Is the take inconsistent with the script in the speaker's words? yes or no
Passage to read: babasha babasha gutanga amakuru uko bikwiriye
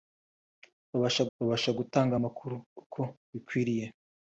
no